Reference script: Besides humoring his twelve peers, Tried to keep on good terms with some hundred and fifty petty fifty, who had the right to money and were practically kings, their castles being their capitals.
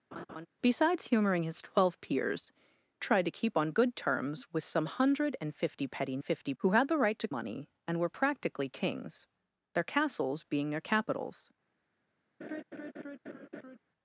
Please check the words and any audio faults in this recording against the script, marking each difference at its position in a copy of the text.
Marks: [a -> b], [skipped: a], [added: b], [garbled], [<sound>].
[laugh] Besides humoring his twelve peers, Tried to keep on good terms with some hundred and fifty petty fifty, who had the right to money and were practically kings, their castles being their capitals. [laugh]